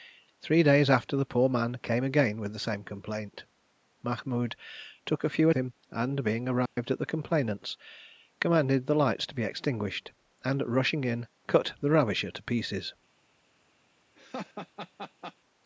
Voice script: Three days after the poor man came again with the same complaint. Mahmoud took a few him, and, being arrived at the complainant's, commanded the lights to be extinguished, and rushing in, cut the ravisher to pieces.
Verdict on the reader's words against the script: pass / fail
pass